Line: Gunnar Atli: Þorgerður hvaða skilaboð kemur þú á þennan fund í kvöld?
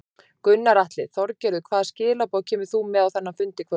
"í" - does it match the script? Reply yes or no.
yes